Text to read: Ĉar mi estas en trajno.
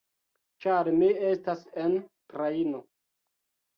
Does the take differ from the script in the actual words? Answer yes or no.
no